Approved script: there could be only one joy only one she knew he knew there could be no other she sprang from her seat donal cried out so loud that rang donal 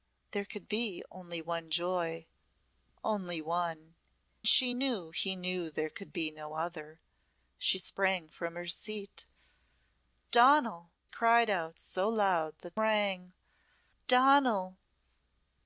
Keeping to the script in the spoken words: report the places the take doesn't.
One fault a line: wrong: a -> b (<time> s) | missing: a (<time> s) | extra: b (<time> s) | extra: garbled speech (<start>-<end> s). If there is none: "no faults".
no faults